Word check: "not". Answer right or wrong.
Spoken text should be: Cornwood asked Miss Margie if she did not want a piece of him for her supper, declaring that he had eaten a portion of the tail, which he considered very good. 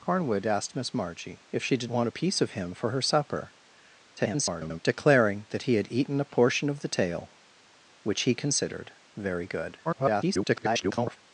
wrong